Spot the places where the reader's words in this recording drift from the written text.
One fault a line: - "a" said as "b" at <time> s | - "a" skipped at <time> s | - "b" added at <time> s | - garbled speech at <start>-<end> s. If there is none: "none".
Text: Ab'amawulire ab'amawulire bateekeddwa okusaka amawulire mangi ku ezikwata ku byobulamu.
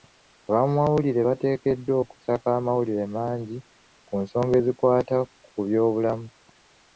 - "ab'amawulire" skipped at 1.2 s
- "nsonga" added at 4.2 s